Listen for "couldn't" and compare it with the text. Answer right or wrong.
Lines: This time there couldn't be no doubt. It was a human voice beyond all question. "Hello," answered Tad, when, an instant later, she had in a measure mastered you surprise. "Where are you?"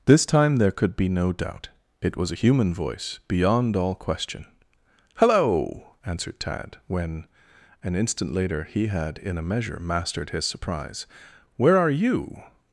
wrong